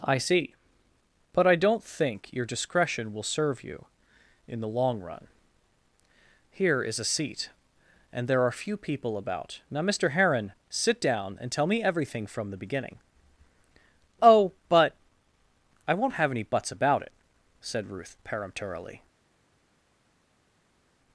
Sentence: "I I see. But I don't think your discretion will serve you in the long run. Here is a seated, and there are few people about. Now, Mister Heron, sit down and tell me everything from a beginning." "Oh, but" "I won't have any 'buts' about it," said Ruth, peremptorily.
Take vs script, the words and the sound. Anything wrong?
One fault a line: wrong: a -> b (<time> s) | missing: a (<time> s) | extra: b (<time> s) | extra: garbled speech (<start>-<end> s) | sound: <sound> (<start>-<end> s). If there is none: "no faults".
missing: I (0.2 s)
wrong: seated -> seat (7.0 s)
wrong: a -> the (12.5 s)